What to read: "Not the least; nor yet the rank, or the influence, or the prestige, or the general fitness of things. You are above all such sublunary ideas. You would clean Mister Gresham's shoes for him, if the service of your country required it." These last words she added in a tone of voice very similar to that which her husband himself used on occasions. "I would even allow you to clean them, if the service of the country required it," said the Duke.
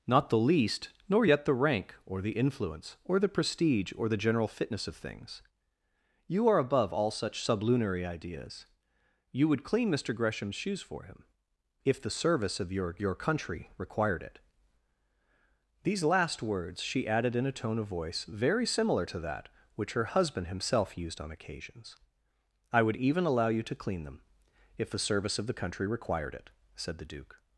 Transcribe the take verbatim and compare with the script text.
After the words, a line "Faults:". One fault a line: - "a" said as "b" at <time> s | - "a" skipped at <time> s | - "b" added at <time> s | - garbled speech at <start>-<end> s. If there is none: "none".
"Not the least; nor yet the rank, or the influence, or the prestige, or the general fitness of things. You are above all such sublunary ideas. You would clean Mister Gresham's shoes for him, if the service of your your country required it." These last words she added in a tone of voice very similar to that which her husband himself used on occasions. "I would even allow you to clean them, if the service of the country required it," said the Duke.
Faults:
- "your" added at 13.0 s